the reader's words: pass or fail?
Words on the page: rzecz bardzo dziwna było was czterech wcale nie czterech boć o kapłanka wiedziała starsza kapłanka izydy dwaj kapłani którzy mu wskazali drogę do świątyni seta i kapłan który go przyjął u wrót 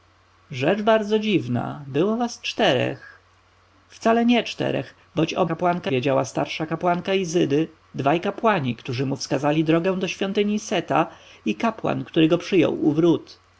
pass